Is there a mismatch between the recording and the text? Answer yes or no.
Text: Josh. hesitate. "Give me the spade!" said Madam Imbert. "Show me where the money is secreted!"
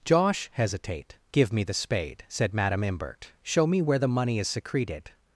no